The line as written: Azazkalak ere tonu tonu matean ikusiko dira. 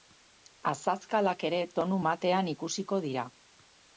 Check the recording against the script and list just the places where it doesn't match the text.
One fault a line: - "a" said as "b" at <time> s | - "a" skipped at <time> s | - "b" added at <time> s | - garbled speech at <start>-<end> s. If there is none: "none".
- "tonu" skipped at 2.0 s